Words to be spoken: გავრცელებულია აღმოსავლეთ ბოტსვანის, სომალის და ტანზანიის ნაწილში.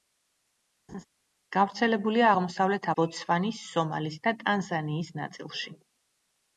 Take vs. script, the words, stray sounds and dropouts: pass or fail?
fail